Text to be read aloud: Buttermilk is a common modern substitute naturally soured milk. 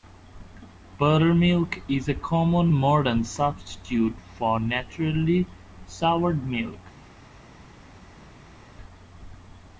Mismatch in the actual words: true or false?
true